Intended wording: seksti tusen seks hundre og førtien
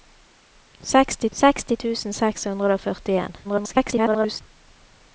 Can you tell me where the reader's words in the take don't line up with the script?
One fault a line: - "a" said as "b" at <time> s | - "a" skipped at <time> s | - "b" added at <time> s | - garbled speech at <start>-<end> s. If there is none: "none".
- "seksti" added at 1.4 s
- garbled speech at 3.4-4.4 s